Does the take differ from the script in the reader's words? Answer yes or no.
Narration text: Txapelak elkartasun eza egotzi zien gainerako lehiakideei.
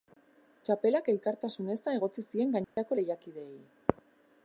no